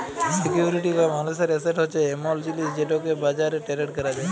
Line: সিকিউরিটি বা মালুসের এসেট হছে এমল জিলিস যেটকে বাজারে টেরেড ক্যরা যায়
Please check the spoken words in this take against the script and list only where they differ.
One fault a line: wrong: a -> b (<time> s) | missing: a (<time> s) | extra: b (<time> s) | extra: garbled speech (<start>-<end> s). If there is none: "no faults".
no faults